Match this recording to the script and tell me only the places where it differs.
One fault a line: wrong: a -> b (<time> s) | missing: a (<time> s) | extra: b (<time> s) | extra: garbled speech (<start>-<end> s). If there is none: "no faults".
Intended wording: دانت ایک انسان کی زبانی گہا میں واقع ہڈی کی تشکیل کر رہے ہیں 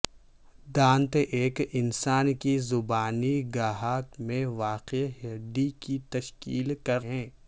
missing: رہے (7.1 s)